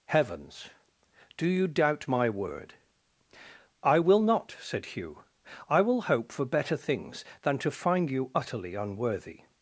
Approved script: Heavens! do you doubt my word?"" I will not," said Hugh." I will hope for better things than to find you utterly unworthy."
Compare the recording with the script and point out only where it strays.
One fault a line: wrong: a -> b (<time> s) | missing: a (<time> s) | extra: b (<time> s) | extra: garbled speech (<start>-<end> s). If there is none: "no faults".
no faults